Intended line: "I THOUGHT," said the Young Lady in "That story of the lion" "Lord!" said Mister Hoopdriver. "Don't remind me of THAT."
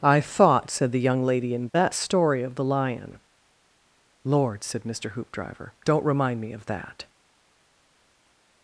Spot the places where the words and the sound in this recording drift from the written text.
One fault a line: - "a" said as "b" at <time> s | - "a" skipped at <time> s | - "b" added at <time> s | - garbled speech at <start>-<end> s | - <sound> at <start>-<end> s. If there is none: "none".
none